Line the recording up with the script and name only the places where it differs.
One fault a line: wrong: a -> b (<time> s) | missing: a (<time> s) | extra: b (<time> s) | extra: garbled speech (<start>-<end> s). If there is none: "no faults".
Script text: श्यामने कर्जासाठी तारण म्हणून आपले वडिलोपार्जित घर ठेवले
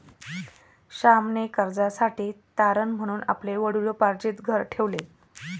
no faults